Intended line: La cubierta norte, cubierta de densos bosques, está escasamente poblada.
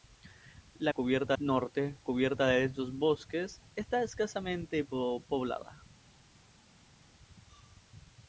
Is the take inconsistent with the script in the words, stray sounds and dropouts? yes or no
no